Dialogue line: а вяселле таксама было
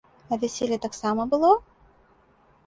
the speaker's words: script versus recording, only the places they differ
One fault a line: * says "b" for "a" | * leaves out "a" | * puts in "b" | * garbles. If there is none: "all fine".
all fine